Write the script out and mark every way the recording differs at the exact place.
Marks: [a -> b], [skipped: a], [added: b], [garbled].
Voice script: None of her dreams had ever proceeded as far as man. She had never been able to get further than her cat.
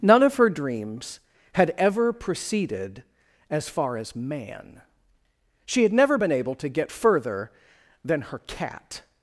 None of her dreams had ever proceeded as far as man. She had never been able to get further than her cat.